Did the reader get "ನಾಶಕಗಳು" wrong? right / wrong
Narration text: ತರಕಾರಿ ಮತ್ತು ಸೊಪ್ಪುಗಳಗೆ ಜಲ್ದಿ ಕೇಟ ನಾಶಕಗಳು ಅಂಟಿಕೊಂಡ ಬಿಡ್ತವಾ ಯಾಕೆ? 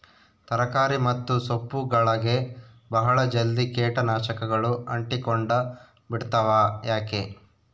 right